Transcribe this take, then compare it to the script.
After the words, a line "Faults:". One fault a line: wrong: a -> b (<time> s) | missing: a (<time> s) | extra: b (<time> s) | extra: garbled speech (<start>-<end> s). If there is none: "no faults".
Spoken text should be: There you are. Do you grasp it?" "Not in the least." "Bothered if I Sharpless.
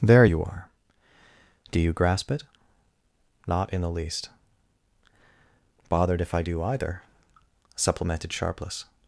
There you are. Do you grasp it?" "Not in the least." "Bothered if I do either," supplemented Sharpless.
Faults:
extra: do either supplemented (6.4 s)